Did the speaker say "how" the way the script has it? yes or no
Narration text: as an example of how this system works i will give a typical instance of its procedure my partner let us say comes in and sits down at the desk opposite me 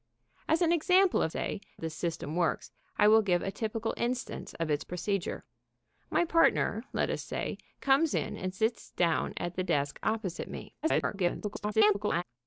no